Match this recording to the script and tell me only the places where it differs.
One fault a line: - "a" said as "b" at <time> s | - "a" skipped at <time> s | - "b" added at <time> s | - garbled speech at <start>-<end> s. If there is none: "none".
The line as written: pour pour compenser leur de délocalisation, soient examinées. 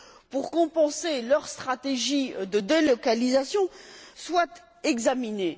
- "pour" skipped at 0.5 s
- "stratégie" added at 1.5 s